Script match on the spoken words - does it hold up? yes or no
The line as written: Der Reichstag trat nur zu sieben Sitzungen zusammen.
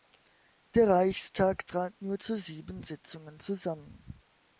yes